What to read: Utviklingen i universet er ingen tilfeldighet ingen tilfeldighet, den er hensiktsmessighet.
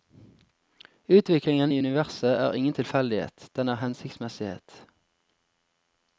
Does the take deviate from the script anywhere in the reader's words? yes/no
yes